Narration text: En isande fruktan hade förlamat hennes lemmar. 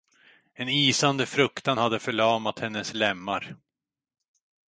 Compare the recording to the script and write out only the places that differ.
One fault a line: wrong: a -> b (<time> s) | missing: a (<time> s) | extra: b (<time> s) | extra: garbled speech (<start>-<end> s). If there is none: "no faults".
no faults